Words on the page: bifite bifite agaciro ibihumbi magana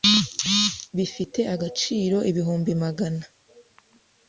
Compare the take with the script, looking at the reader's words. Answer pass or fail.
fail